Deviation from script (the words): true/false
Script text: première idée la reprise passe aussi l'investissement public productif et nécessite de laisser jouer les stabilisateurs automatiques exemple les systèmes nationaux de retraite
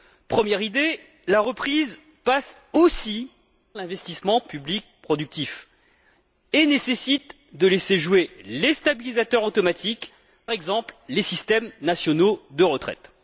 false